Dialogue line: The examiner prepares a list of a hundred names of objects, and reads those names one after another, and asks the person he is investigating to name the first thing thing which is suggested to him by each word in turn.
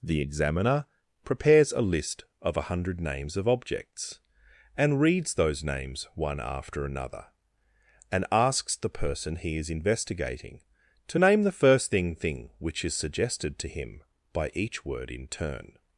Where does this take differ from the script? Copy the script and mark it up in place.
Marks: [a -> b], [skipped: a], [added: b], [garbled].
The examiner prepares a list of a hundred names of objects, and reads those names one after another, and asks the person he is investigating to name the first thing thing which is suggested to him by each word in turn.